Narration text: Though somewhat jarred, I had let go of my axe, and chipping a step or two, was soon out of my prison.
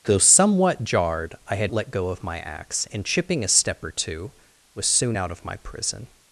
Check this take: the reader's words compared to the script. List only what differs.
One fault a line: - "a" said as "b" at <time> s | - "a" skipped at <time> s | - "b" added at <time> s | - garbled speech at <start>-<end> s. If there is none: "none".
none